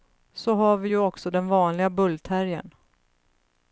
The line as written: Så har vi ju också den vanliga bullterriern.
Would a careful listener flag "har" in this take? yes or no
no